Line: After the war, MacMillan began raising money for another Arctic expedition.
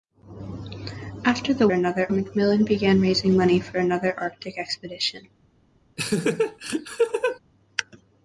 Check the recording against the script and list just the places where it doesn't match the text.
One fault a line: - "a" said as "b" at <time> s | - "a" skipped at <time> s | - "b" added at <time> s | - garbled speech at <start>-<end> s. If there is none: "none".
- "war" said as "another" at 1.7 s